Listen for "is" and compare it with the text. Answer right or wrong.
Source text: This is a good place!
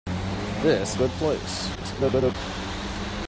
wrong